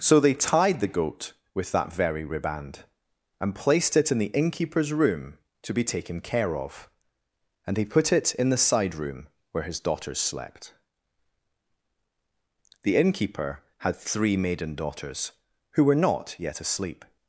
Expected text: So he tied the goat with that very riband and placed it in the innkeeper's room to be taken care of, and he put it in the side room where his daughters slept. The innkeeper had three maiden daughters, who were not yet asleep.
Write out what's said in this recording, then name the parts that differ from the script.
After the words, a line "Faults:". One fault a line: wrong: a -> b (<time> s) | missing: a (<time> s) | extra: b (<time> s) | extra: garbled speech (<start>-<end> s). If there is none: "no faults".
So they tied the goat with that very riband and placed it in the innkeeper's room to be taken care of, and he put it in the side room where his daughters slept. The innkeeper had three maiden daughters, who were not yet asleep.
Faults:
wrong: he -> they (0.2 s)